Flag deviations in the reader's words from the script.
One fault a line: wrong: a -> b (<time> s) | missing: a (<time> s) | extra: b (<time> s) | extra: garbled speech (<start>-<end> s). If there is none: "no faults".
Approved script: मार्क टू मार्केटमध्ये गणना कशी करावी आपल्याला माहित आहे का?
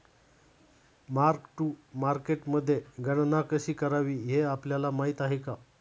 extra: हे (4.2 s)